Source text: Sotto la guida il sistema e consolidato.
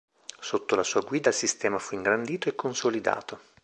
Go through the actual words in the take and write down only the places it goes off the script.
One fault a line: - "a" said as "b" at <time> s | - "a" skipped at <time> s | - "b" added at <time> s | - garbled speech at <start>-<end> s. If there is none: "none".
- "sua" added at 0.8 s
- "fu ingrandito" added at 1.8 s